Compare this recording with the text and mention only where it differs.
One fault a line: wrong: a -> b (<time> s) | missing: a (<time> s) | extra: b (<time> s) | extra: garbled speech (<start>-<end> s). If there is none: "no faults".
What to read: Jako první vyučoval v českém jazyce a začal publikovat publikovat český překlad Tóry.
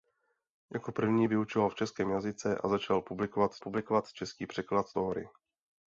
no faults